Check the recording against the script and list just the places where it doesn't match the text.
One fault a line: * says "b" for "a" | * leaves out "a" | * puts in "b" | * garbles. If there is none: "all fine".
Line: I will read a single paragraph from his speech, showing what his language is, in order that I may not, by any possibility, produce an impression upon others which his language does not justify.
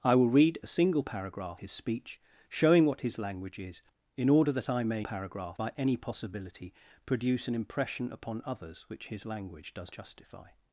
* leaves out "from"
* says "paragraph" for "not"
* leaves out "not"